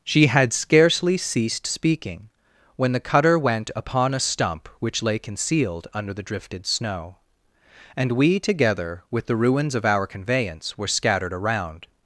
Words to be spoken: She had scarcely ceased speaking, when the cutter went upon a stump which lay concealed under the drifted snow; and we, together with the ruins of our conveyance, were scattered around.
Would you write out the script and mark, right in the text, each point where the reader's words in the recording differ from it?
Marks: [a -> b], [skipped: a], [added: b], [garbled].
She had scarcely ceased speaking, when the cutter went upon a stump which lay concealed under the drifted snow; and we, together with the ruins of our conveyance, were scattered around.